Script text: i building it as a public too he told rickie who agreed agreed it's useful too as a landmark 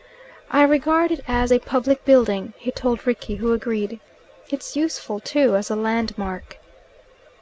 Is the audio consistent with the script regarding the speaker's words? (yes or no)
no